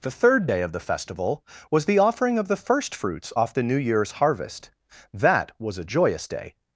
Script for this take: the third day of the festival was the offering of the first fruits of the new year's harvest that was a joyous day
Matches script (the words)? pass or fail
fail